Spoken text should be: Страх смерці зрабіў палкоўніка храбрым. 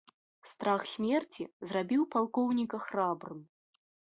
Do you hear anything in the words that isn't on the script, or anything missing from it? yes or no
no